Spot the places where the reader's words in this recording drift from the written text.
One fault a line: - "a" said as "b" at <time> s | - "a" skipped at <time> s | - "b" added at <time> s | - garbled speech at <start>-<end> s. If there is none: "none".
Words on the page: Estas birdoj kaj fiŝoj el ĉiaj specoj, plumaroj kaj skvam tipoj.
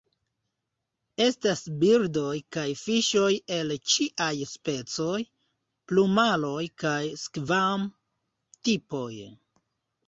none